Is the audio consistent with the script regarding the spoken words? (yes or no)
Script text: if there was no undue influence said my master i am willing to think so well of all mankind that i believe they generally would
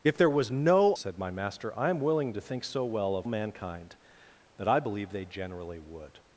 no